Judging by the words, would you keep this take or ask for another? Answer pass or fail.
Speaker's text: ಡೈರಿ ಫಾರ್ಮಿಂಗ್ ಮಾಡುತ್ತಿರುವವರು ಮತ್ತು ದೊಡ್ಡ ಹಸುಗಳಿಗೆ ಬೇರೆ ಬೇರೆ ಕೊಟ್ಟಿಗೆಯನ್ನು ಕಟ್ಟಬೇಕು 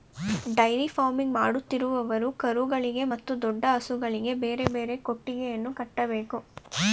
fail